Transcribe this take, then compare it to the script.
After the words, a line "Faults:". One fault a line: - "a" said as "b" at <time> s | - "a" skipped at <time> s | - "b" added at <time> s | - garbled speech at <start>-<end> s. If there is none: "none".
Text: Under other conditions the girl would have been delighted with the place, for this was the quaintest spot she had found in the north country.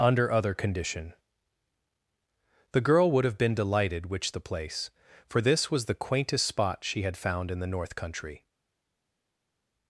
Under other condition the girl would have been delighted which the place, for this was the quaintest spot she had found in the north country.
Faults:
- "conditions" said as "condition" at 0.6 s
- "with" said as "which" at 4.1 s